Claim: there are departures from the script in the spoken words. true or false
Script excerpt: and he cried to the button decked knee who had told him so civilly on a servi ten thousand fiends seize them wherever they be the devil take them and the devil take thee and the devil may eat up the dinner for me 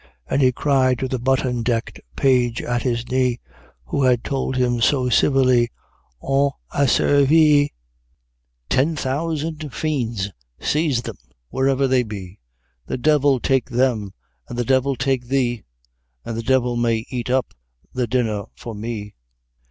true